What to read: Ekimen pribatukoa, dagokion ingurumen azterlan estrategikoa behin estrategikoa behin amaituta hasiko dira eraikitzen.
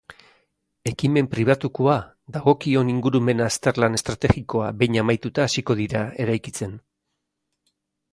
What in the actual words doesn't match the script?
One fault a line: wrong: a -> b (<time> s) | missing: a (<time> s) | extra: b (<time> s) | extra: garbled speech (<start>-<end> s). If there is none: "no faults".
missing: estrategikoa behin (5.0 s)